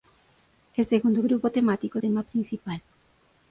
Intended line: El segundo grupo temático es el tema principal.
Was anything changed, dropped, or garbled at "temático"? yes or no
no